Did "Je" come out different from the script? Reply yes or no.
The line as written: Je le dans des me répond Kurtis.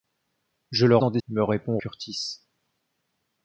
no